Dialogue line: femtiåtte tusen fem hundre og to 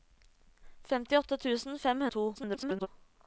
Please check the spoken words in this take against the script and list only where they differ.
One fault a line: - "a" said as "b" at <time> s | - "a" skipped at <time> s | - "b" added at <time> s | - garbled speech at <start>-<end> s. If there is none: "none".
- "hundre" skipped at 2.0 s
- garbled speech at 2.3-2.9 s